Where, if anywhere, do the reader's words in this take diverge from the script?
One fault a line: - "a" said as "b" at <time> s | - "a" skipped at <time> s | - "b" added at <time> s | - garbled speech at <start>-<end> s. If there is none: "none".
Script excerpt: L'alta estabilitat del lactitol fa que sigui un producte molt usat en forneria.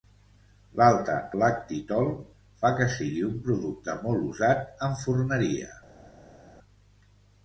- "estabilitat del" skipped at 1.2 s